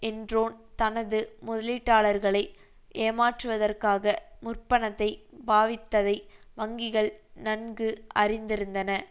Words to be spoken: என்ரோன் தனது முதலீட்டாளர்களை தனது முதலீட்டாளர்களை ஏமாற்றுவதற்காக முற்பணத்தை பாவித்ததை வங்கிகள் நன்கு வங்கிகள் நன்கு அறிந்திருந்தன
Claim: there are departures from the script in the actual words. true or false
true